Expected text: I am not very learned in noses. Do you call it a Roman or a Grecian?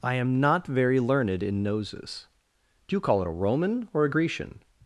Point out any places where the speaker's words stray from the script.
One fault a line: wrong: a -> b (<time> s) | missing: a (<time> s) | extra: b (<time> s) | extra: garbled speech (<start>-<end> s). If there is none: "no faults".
no faults